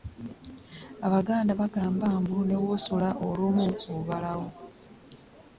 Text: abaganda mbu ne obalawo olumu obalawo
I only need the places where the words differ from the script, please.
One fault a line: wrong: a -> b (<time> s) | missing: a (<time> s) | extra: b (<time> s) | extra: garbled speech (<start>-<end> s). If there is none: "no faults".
extra: bagamba (1.6 s)
wrong: obalawo -> w'osula (2.6 s)